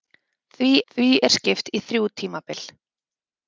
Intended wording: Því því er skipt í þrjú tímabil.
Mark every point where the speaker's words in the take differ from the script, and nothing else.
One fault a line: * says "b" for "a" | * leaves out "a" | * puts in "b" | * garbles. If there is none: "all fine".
all fine